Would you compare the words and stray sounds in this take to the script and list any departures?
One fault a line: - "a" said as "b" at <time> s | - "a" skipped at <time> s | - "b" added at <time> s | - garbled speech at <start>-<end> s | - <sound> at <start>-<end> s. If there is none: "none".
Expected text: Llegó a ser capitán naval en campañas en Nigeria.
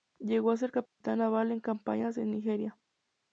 - dropout at 0.9-1.0 s